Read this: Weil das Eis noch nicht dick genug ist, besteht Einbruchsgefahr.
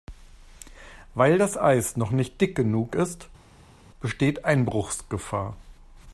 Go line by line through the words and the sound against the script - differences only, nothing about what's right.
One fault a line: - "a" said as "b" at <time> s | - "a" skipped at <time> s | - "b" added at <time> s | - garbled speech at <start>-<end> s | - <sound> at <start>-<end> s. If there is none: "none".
none